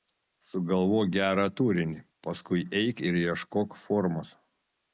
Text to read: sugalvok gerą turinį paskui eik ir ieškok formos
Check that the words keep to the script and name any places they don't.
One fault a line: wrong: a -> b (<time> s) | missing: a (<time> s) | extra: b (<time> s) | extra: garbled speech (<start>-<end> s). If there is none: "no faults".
no faults